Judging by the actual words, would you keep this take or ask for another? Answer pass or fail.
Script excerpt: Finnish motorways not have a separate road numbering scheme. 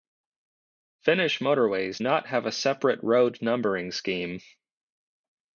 pass